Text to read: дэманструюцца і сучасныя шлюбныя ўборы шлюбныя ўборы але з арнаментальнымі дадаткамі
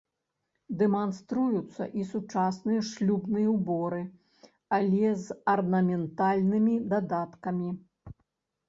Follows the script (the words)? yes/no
no